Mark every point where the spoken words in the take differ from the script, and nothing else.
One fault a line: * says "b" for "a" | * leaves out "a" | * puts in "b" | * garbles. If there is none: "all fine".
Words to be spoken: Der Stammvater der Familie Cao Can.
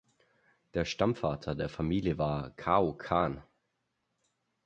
* puts in "war"